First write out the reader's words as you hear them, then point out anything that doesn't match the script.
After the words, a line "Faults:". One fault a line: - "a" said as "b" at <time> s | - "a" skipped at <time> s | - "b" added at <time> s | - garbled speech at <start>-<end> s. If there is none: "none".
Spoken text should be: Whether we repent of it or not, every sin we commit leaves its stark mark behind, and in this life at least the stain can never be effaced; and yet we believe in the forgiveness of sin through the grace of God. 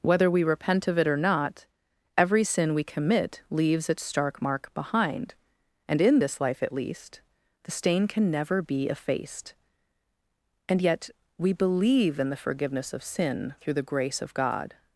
Whether we repent of it or not, every sin we commit leaves its stark mark behind, and in this life at least the stain can never be effaced; and yet we believe in the forgiveness of sin through the grace of God.
Faults:
none